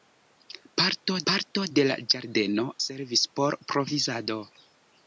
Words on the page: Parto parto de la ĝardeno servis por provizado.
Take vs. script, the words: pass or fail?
pass